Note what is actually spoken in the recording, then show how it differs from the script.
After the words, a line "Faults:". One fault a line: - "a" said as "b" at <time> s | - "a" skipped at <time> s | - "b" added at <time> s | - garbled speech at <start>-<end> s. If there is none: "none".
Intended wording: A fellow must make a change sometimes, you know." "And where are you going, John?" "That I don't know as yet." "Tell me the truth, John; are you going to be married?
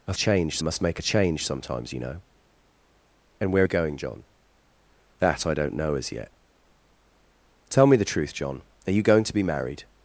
A change must make a change sometimes, you know." "And where you going, John?" "That I don't know as yet." "Tell me the truth, John; are you going to be married?
Faults:
- "fellow" said as "change" at 0.1 s
- "are" skipped at 3.6 s